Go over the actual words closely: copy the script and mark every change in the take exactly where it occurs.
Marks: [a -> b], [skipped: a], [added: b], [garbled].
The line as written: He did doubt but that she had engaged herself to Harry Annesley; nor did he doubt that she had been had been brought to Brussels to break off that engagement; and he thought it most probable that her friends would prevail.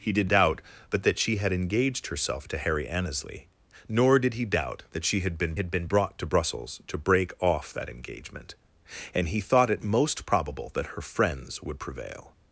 He did doubt but that she had engaged herself to Harry Annesley; nor did he doubt that she had been had been brought to Brussels to break off that engagement; and he thought it most probable that her friends would prevail.